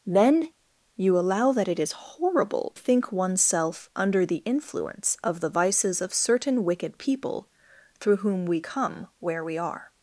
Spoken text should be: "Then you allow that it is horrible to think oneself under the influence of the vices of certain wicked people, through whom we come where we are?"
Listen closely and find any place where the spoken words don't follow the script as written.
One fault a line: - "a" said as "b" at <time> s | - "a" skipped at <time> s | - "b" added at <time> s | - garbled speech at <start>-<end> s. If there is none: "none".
- "to" skipped at 2.7 s